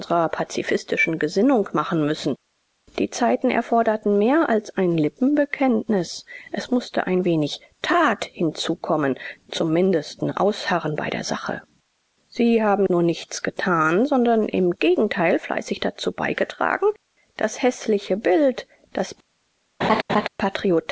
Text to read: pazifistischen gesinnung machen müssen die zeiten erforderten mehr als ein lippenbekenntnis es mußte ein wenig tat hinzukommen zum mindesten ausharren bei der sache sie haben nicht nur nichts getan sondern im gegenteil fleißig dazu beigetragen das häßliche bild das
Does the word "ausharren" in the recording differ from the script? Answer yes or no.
no